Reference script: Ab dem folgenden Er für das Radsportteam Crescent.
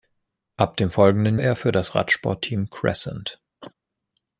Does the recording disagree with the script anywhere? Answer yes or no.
no